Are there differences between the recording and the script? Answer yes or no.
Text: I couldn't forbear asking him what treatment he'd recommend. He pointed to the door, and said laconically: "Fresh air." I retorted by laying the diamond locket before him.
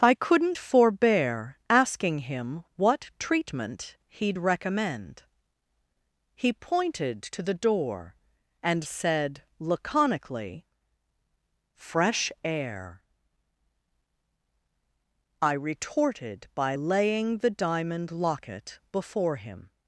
no